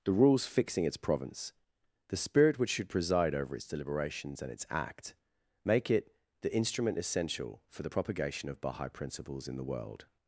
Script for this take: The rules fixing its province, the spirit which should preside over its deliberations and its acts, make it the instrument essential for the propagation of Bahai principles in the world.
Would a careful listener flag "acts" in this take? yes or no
yes